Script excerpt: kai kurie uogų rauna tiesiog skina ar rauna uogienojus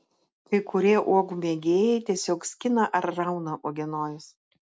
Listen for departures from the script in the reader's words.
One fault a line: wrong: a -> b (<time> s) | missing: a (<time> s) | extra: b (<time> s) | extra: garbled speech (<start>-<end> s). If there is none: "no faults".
wrong: rauna -> mėgėjai (1.4 s)